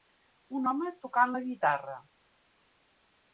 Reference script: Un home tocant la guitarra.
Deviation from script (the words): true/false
false